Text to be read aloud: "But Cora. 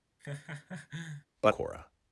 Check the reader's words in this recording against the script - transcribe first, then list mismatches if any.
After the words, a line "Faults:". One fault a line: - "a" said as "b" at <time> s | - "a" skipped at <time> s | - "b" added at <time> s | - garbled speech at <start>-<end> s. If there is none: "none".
"But Cora.
Faults:
none